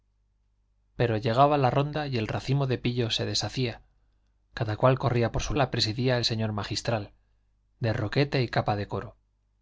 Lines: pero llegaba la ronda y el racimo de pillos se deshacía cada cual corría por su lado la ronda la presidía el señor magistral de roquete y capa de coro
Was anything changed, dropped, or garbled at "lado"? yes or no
yes